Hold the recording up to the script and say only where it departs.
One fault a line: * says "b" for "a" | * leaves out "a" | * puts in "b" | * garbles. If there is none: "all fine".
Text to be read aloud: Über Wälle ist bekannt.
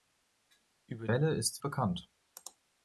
all fine